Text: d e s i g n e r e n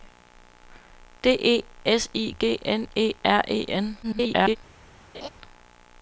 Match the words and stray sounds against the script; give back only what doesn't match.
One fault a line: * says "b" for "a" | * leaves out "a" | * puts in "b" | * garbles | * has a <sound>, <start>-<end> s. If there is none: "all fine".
* garbles
* has a laugh, 5.1-5.3 s